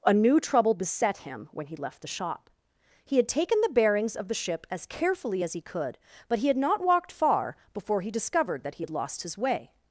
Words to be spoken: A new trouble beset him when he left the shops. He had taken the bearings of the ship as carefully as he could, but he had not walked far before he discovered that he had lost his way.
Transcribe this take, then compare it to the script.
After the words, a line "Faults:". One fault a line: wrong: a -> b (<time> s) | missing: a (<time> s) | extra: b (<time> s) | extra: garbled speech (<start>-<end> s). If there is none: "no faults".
A new trouble beset him when he left the shop. He had taken the bearings of the ship as carefully as he could, but he had not walked far before he discovered that he had lost his way.
Faults:
wrong: shops -> shop (2.1 s)